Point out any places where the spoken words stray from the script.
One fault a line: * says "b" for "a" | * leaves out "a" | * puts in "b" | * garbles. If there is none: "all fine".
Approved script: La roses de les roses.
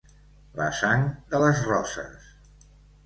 * says "sang" for "roses"